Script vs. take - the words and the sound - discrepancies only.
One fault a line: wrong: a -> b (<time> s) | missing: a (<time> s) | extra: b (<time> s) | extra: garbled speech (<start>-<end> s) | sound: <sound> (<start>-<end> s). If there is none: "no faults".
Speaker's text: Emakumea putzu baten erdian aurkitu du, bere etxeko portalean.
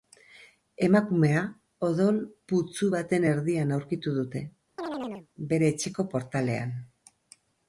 extra: odol (1.9 s)
wrong: du -> dute (4.2 s)
sound: chirp (4.8-5.3 s)